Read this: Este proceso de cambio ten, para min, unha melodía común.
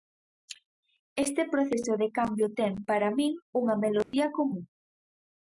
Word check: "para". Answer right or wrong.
right